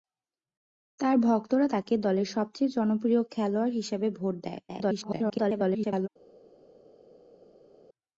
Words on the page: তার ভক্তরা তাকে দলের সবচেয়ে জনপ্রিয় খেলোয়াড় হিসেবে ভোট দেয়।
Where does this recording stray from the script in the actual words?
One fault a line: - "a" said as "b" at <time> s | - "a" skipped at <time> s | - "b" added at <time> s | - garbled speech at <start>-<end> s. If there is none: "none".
- garbled speech at 4.7-6.1 s